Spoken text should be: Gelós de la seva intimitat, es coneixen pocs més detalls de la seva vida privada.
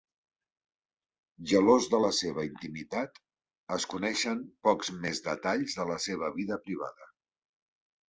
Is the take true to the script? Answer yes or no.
yes